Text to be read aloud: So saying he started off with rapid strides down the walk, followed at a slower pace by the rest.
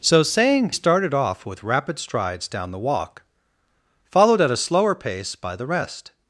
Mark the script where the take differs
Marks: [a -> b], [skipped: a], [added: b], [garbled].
So saying [skipped: he] started off with rapid strides down the walk, followed at a slower pace by the rest.